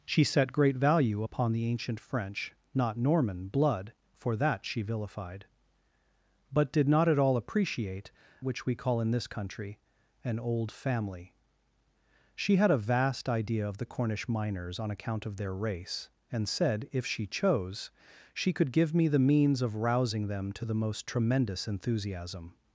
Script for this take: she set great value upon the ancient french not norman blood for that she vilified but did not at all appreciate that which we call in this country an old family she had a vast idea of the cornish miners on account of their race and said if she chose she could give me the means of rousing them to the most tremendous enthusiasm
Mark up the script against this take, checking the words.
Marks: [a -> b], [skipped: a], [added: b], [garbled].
she set great value upon the ancient french not norman blood for that she vilified but did not at all appreciate [skipped: that] which we call in this country an old family she had a vast idea of the cornish miners on account of their race and said if she chose she could give me the means of rousing them to the most tremendous enthusiasm